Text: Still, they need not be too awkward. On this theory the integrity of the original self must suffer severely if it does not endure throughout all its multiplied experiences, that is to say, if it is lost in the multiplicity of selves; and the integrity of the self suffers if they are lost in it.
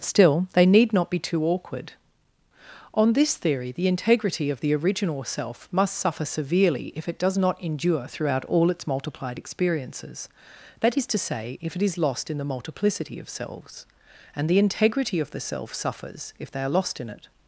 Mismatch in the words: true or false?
false